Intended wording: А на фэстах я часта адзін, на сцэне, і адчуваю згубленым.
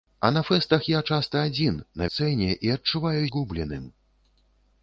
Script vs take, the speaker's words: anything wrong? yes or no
no